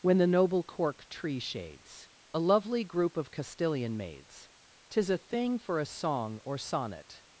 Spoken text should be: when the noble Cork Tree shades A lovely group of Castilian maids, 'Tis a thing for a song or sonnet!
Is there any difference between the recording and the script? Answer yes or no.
no